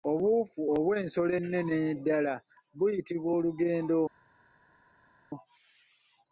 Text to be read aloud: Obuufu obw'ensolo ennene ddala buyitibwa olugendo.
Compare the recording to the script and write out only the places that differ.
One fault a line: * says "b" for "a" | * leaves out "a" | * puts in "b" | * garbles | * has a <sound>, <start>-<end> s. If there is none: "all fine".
all fine